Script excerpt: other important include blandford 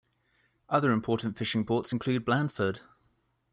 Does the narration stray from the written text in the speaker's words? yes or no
yes